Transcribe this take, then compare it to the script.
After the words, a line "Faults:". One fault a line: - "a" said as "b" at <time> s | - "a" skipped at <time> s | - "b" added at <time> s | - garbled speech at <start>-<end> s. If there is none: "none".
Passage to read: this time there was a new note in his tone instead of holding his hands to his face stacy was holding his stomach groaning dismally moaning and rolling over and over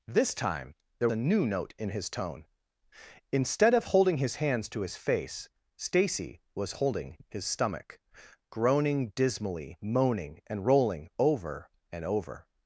this time there a new note in his tone instead of holding his hands to his face stacy was holding his stomach groaning dismally moaning and rolling over and over
Faults:
- "was" skipped at 1.1 s